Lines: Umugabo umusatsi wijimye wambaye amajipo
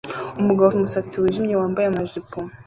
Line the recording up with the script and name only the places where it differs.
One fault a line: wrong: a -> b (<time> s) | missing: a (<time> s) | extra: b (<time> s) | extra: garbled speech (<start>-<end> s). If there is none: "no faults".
no faults